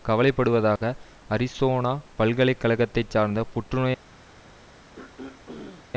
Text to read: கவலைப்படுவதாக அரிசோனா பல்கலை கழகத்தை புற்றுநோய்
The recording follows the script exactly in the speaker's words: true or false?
false